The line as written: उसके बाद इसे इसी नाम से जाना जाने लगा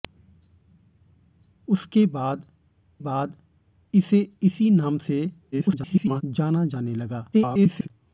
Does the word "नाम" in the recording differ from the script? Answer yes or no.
no